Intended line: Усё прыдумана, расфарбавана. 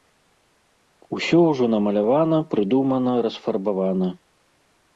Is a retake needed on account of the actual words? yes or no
yes